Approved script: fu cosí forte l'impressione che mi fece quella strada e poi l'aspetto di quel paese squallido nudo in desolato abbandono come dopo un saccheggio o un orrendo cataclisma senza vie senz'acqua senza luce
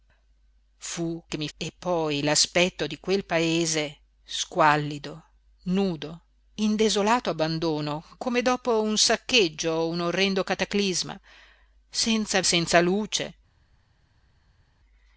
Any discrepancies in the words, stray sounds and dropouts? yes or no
yes